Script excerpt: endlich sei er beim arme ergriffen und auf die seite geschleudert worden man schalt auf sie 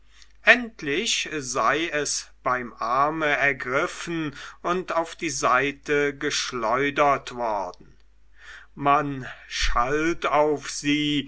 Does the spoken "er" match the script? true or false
false